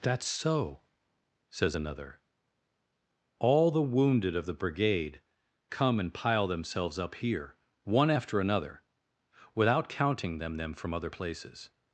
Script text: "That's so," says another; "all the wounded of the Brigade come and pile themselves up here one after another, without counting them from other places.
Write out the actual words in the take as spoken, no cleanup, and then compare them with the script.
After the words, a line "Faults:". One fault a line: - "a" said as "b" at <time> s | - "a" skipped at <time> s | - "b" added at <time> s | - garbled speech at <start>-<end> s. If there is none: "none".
"That's so," says another; "all the wounded of the Brigade come and pile themselves up here one after another, without counting them them from other places.
Faults:
- "them" added at 10.6 s